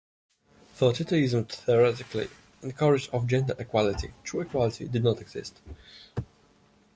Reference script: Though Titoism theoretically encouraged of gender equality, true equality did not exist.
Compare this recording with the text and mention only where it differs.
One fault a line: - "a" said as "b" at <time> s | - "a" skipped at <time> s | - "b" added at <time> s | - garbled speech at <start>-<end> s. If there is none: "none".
none